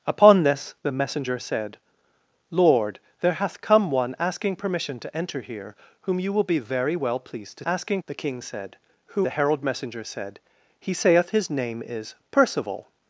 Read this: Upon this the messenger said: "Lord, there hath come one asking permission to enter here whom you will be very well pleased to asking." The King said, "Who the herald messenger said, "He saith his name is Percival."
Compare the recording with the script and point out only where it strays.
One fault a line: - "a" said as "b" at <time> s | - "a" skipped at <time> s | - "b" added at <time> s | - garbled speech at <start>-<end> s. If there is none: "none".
none